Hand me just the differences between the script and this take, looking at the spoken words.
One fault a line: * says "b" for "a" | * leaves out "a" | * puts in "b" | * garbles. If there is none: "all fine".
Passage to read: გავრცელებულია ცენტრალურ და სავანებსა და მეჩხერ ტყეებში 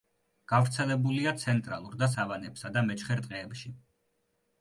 all fine